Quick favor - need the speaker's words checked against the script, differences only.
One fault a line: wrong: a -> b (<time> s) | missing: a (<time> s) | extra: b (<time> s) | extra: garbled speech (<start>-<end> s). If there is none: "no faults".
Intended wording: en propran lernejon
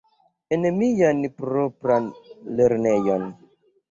extra: mian (0.8 s)